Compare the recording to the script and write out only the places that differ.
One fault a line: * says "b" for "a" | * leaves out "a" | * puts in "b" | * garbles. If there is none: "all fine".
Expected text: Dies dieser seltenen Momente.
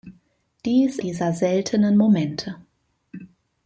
all fine